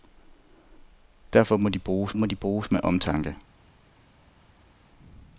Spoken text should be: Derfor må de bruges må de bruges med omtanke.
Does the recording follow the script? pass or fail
pass